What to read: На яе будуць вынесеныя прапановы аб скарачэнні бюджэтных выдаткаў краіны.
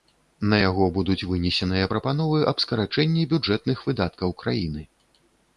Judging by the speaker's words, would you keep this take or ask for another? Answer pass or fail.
fail